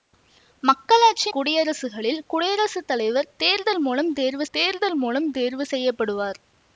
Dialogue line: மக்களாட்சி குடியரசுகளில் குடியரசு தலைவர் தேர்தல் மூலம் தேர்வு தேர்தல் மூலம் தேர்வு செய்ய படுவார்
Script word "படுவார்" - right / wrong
right